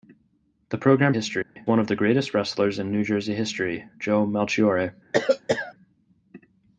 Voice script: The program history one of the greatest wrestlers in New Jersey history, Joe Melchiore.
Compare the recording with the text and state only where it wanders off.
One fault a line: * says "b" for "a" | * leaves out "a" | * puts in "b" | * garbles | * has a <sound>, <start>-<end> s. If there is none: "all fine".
* has a dropout, 1.4-1.6 s
* has a cough, 5.1-5.7 s